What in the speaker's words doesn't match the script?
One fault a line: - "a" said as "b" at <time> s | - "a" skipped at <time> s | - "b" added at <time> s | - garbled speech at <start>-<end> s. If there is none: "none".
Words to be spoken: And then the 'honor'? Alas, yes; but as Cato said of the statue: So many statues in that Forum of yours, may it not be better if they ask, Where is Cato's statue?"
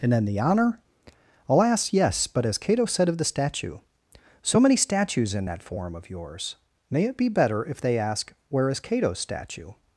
- "not" skipped at 7.2 s